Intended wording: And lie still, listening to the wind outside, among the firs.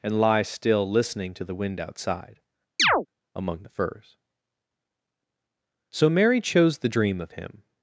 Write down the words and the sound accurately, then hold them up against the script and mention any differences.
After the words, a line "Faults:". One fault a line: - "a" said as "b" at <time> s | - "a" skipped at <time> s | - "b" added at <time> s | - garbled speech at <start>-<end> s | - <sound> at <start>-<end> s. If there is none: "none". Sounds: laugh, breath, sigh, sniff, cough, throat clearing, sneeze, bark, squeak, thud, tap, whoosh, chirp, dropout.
And lie still, listening to the wind outside, among the firs. So Mary chose the dream of Him
Faults:
- chirp at 2.8-3.1 s
- "So Mary chose the dream of Him" added at 5.9 s